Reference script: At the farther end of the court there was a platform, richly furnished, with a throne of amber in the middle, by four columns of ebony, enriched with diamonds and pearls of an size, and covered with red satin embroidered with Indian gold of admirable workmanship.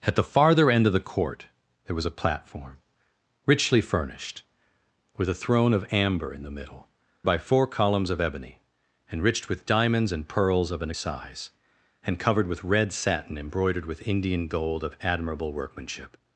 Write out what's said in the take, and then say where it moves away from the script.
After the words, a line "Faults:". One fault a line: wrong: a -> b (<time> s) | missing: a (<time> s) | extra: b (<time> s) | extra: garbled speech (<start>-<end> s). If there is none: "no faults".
At the farther end of the court there was a platform, richly furnished, with a throne of amber in the middle, by four columns of ebony, enriched with diamonds and pearls of an size, and covered with red satin embroidered with Indian gold of admirable workmanship.
Faults:
no faults